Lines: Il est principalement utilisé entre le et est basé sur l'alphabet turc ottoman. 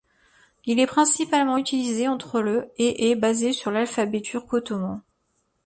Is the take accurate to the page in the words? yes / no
yes